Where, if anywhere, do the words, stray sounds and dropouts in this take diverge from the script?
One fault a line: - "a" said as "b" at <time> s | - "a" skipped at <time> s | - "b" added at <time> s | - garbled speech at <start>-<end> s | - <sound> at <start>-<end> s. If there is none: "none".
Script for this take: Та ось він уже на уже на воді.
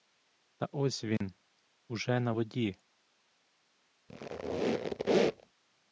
- dropout at 1.2-1.2 s
- "уже на" skipped at 2.3 s
- squeak at 4.1-5.5 s